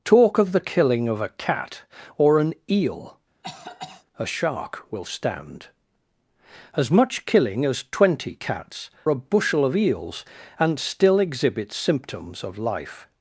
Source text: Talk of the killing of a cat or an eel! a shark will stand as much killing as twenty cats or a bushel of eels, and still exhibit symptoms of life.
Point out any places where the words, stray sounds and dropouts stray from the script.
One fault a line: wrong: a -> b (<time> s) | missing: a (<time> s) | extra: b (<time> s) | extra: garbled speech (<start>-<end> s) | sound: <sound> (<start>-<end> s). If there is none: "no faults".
sound: cough (3.4-4.0 s)
missing: or (8.9 s)